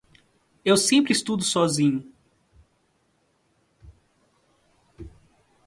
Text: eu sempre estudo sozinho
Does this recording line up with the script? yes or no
yes